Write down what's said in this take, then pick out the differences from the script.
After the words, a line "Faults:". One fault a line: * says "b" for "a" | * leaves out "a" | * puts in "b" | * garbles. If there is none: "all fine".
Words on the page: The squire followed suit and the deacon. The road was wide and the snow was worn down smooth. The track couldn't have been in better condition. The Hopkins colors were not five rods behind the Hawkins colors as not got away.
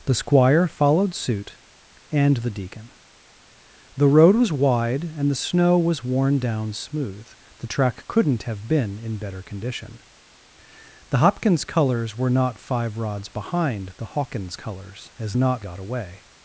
The squire followed suit and the deacon. The road was wide and the snow was worn down smooth. The track couldn't have been in better condition. The Hopkins colors were not five rods behind the Hawkins colors as not got away.
Faults:
all fine